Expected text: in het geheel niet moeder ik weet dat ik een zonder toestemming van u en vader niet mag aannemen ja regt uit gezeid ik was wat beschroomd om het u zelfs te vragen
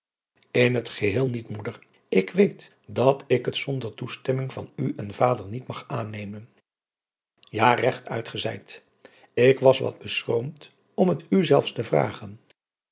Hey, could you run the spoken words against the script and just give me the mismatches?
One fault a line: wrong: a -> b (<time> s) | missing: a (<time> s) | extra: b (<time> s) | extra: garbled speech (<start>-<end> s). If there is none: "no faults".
wrong: een -> het (3.4 s)